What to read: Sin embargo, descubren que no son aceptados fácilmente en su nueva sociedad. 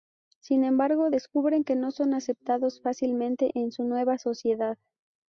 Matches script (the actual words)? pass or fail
pass